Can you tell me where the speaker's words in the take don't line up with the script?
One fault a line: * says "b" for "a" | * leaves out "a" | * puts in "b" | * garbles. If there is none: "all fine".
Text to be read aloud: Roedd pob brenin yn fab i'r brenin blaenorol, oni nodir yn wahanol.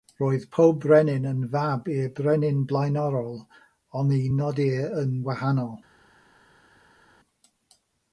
all fine